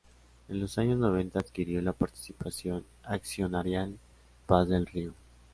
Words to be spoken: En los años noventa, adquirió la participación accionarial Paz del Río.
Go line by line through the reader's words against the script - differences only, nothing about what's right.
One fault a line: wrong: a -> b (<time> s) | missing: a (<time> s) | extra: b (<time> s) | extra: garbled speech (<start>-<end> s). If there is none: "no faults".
no faults